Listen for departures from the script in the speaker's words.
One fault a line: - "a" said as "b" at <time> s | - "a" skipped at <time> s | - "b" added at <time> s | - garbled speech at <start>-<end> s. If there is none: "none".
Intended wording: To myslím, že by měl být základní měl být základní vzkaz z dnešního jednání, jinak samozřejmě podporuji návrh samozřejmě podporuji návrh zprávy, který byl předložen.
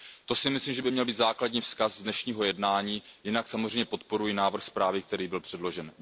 - "si" added at 0.3 s
- "měl být základní" skipped at 1.6 s
- "samozřejmě podporuji návrh" skipped at 4.6 s